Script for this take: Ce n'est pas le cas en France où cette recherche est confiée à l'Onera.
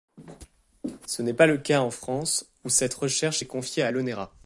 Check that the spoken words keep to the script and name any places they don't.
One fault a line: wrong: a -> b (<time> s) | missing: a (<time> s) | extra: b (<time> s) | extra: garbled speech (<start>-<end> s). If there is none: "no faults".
no faults